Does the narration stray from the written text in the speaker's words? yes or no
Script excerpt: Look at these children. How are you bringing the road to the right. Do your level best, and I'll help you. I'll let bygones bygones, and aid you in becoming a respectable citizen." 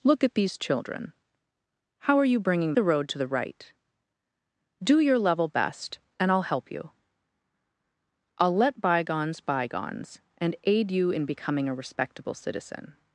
no